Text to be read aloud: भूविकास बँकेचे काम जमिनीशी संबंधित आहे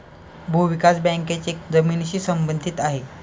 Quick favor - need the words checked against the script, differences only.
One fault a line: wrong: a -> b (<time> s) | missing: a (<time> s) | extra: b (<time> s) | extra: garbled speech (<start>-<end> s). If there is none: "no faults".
missing: काम (1.5 s)